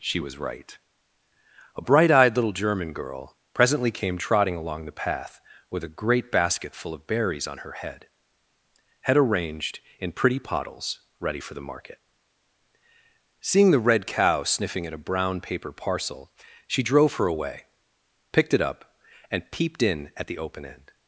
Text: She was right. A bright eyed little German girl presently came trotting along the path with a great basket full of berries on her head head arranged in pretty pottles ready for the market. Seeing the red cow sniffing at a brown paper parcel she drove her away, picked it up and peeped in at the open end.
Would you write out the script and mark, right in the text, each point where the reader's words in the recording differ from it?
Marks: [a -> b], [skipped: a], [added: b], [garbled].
She was right. A bright eyed little German girl presently came trotting along the path with a great basket full of berries on her head head arranged in pretty pottles ready for the market. Seeing the red cow sniffing at a brown paper parcel she drove her away, picked it up and peeped in at the open end.